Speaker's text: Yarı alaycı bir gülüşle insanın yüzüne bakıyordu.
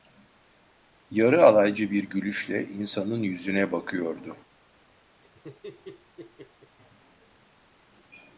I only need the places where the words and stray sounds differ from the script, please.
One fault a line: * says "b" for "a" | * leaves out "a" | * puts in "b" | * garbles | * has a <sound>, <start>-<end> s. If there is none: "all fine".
* has a laugh, 5.2-6.8 s